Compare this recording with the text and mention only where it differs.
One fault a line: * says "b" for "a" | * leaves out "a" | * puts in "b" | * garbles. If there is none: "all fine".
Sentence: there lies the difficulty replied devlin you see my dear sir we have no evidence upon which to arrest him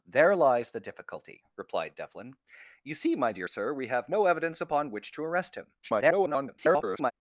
* garbles